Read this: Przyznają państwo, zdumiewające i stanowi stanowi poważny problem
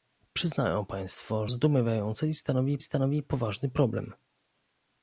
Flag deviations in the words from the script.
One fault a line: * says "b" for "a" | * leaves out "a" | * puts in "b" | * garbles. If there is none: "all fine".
all fine